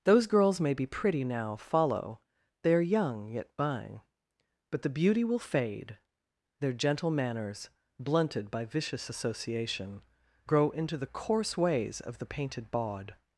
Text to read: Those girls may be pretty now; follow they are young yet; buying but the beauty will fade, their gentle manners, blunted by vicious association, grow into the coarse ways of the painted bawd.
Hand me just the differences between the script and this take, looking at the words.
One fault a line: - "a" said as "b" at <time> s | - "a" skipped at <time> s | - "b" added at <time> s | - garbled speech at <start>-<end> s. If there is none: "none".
none